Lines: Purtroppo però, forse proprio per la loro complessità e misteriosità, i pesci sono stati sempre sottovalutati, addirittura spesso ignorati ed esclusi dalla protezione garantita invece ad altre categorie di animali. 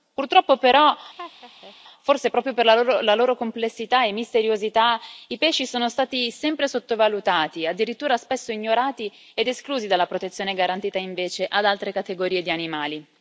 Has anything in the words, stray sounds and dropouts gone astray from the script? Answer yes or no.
yes